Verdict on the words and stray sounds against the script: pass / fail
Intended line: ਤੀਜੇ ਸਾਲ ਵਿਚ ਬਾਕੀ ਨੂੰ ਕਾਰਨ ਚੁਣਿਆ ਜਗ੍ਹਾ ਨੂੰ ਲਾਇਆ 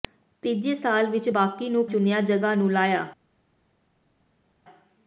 fail